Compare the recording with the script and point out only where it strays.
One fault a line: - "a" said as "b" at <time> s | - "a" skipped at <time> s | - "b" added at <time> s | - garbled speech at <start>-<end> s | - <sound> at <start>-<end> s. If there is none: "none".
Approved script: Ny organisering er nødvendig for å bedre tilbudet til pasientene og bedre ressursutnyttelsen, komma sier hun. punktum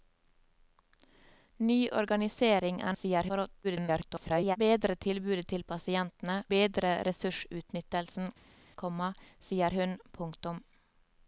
- "nødvendig" said as "sier" at 3.0 s
- garbled speech at 3.6-4.6 s
- "og" skipped at 6.4 s